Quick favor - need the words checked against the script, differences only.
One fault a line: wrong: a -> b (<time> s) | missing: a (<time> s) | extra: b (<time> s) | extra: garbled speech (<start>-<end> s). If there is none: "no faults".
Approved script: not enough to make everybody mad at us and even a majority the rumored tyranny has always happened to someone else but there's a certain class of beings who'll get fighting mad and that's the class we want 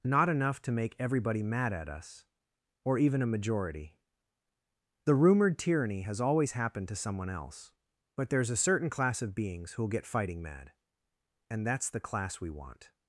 wrong: and -> or (2.8 s)